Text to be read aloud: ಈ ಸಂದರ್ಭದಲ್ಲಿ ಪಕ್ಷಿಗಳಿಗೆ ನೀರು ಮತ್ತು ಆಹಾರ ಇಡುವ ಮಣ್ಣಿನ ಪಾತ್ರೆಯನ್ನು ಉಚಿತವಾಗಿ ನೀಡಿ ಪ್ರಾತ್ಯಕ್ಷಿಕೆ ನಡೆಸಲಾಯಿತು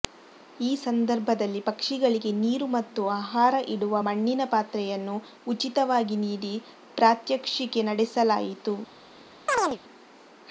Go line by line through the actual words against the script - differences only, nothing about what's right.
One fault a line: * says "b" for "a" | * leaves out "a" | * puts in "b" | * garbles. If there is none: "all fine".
all fine